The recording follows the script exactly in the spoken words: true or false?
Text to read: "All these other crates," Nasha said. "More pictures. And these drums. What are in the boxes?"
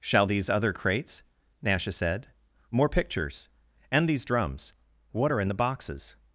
false